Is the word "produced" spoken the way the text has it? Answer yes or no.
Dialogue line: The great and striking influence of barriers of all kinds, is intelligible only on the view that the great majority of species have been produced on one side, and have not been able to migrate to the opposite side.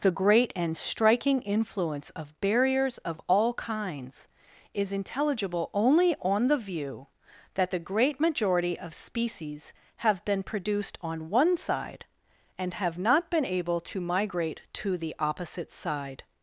yes